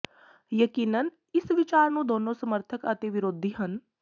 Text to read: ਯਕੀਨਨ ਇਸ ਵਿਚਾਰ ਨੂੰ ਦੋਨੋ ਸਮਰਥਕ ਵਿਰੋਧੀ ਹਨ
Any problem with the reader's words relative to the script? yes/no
yes